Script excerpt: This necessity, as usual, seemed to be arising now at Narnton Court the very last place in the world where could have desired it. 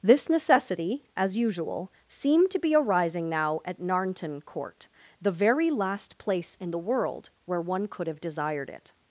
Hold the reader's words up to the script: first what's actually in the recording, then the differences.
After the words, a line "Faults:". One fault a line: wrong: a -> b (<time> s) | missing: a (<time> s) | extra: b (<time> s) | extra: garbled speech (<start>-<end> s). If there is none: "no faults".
This necessity, as usual, seemed to be arising now at Narnton Court the very last place in the world where one could have desired it.
Faults:
extra: one (7.6 s)